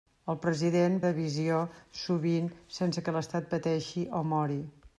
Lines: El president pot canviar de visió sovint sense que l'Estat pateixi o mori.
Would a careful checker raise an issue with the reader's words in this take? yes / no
yes